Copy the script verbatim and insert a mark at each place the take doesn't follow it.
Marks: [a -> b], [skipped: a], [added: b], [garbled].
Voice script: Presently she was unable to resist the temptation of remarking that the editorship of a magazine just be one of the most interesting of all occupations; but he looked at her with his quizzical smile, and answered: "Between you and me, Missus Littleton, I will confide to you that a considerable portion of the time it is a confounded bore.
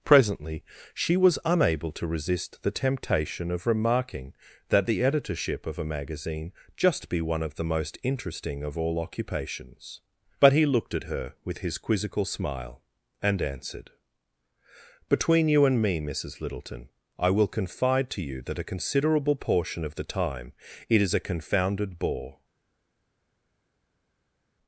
Presently she was unable to resist the temptation of remarking that the editorship of a magazine just be one of the most interesting of all occupations; but he looked at her with his quizzical smile, and answered: "Between you and me, Missus Littleton, I will confide to you that a considerable portion of the time it is a confounded bore.